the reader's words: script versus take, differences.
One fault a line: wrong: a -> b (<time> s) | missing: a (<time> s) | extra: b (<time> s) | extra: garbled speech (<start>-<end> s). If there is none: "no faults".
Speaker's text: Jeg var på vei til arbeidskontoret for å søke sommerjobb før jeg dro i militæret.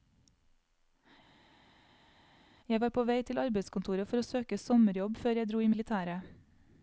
no faults